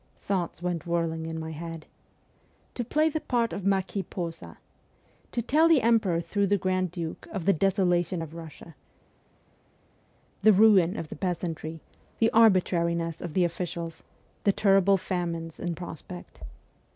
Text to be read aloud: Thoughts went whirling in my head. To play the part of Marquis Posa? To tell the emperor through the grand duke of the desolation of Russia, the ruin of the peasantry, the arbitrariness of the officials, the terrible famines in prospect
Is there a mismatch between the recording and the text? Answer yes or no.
no